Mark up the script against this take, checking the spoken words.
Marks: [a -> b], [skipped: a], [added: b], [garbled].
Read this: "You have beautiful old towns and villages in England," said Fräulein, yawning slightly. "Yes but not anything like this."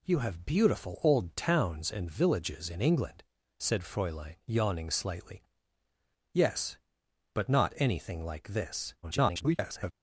"You have beautiful old towns and villages in England," said Fräulein, yawning slightly. "Yes but not anything like this." [garbled]